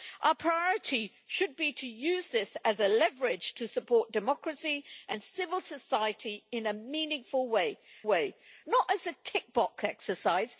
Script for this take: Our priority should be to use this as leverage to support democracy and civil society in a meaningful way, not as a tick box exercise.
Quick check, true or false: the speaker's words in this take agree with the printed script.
false